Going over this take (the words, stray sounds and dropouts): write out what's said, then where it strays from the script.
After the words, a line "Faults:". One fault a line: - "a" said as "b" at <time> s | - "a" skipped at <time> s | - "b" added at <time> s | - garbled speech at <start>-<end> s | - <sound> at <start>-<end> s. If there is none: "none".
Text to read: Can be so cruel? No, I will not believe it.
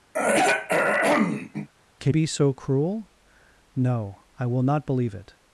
Can be so cruel? No, I will not believe it.
Faults:
- throat clearing at 0.1-1.7 s